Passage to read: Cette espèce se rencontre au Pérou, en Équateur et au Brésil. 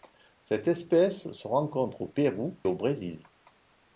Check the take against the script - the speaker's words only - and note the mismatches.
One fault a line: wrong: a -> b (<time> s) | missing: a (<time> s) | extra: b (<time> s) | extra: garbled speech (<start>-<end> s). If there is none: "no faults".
missing: en Équateur et (2.6 s)